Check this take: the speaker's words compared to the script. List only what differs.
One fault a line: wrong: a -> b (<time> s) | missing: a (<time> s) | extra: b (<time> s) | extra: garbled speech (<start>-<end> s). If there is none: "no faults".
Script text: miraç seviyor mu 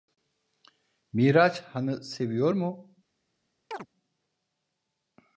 extra: han'ı (1.6 s)